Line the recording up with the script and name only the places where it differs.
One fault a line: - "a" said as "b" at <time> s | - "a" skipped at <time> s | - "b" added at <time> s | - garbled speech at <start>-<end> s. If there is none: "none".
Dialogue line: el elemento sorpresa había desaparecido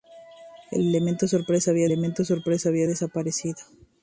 - "elemento sorpresa había" added at 1.8 s